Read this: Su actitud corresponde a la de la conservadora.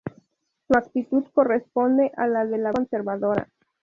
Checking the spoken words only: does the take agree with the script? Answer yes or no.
yes